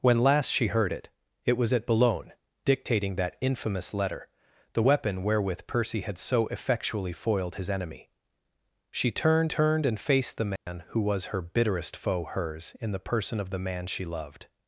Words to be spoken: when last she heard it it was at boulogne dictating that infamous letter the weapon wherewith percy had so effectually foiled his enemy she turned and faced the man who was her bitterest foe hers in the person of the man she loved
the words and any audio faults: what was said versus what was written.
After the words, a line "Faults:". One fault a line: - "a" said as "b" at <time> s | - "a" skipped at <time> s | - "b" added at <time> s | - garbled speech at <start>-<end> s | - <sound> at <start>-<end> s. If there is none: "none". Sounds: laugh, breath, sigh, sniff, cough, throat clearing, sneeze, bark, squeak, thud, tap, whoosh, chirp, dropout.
when last she heard it it was at boulogne dictating that infamous letter the weapon wherewith percy had so effectually foiled his enemy she turned turned and faced the man who was her bitterest foe hers in the person of the man she loved
Faults:
- "turned" added at 9.4 s
- dropout at 10.6-10.7 s